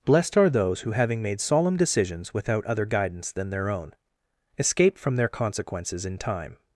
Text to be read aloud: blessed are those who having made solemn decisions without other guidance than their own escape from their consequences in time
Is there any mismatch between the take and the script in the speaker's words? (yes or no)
no